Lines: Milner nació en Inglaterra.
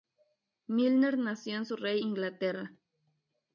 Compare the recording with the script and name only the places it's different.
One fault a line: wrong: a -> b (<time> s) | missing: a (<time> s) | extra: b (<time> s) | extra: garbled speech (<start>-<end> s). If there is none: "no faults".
extra: Surrey (1.7 s)